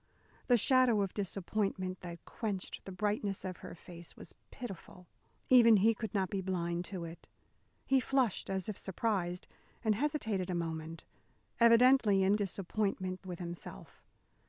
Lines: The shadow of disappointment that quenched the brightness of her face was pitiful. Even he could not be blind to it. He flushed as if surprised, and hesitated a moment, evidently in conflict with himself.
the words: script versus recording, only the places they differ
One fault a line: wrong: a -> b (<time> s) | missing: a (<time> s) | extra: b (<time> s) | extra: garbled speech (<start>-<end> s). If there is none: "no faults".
wrong: conflict -> disappointment (12.3 s)